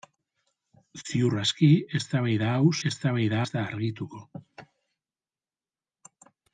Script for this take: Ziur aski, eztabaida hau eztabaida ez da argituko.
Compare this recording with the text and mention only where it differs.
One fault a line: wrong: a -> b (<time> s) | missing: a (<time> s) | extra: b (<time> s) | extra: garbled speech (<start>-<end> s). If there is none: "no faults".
no faults